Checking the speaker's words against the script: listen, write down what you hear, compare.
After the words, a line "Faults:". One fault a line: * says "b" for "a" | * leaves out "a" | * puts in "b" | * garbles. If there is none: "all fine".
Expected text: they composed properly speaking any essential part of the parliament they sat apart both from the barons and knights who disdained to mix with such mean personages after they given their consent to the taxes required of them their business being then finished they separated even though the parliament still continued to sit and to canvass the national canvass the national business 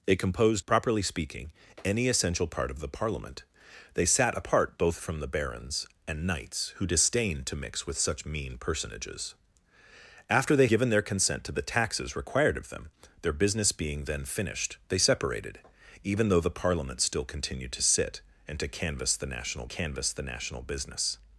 they composed properly speaking any essential part of the parliament they sat apart both from the barons and knights who disdained to mix with such mean personages after they given their consent to the taxes required of them their business being then finished they separated even though the parliament still continued to sit and to canvass the national canvass the national business
Faults:
all fine